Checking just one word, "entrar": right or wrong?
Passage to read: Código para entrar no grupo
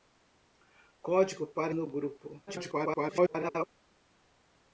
wrong